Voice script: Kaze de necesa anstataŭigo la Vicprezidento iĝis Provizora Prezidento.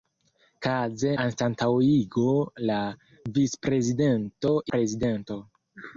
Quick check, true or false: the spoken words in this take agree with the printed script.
false